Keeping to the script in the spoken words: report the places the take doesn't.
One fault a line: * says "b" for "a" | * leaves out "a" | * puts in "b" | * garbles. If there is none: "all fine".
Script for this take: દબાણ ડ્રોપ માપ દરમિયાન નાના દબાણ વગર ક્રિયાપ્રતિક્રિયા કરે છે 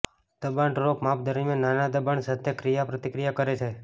* says "સાથે" for "વગર"